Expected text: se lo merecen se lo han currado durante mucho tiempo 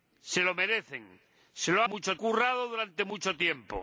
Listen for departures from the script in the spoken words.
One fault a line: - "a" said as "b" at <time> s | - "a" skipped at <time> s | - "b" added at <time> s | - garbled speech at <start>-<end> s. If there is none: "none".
- "han" said as "mucho" at 1.9 s